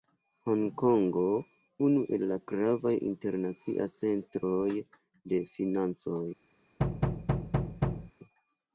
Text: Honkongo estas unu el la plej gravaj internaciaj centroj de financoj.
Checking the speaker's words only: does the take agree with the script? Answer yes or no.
no